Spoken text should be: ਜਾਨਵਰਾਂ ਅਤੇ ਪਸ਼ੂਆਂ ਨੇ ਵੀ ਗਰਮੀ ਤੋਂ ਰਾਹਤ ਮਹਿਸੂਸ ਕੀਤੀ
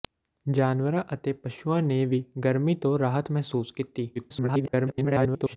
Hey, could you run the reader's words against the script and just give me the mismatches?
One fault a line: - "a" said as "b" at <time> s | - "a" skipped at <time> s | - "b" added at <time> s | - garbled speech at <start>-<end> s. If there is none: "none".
- garbled speech at 4.1-5.6 s